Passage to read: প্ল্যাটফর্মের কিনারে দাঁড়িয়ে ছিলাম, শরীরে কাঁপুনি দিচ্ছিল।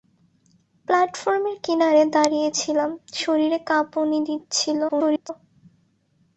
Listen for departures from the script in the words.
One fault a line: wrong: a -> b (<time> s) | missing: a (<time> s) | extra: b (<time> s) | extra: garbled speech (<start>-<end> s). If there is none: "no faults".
extra: garbled speech (4.9-5.3 s)